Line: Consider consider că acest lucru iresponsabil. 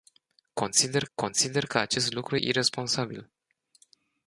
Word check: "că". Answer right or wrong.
right